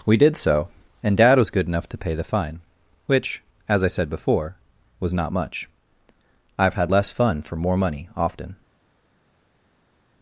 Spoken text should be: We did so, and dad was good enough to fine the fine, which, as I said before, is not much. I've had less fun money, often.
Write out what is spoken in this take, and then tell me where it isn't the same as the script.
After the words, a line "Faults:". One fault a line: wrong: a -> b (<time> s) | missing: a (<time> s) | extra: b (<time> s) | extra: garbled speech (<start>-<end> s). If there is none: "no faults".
We did so, and dad was good enough to pay the fine, which, as I said before, was not much. I've had less fun for more money, often.
Faults:
wrong: fine -> pay (2.0 s)
wrong: is -> was (5.0 s)
extra: for more (7.4 s)